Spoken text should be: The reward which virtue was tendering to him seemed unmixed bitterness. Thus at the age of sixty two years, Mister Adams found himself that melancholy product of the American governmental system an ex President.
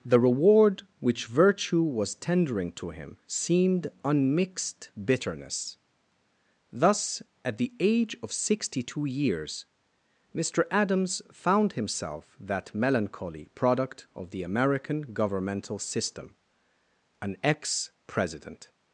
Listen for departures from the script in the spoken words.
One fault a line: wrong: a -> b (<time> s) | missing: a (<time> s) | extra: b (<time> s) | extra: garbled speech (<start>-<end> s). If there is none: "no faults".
no faults